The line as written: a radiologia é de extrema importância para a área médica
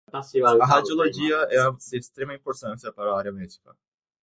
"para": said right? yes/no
yes